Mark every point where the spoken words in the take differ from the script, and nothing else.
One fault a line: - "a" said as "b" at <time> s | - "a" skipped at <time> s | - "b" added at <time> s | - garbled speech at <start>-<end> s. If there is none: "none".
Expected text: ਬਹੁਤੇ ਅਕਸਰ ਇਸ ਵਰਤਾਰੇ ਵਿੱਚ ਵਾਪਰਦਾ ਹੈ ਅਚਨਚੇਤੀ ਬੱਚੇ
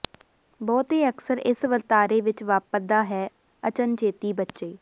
none